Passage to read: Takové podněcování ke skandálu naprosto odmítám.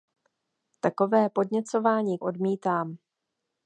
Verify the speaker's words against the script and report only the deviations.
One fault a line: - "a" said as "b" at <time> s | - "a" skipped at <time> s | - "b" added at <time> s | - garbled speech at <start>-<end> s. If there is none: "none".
- "ke skandálu naprosto" skipped at 2.2 s